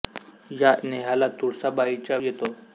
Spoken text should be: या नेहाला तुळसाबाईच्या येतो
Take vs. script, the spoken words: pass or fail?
pass